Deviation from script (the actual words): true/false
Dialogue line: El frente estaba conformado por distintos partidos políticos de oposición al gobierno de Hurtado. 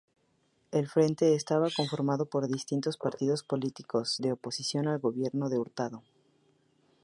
false